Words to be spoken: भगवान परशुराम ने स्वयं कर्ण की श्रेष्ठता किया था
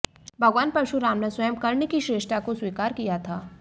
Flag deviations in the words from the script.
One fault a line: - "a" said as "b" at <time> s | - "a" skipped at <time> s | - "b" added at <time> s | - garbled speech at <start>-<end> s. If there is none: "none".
- "को स्वीकार" added at 2.4 s